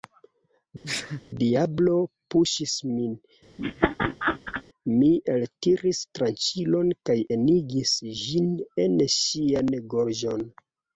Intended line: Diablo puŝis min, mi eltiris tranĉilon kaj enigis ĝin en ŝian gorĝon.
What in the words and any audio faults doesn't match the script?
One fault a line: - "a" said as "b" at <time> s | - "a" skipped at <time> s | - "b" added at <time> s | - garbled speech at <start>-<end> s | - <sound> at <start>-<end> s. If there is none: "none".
- sneeze at 0.8-1.2 s
- laugh at 3.6-4.6 s